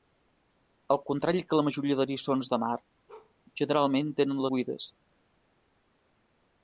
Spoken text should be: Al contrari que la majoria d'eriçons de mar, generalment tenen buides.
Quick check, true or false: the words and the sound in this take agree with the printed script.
false